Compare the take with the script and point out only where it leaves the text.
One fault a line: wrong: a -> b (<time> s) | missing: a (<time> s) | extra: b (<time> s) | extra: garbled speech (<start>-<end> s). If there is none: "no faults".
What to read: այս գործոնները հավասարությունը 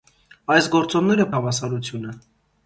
no faults